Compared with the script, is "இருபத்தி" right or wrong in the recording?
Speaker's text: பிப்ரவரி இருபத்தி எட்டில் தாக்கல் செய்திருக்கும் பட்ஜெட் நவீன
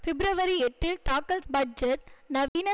wrong